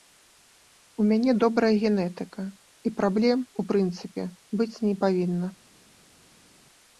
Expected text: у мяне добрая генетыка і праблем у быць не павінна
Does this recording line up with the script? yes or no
no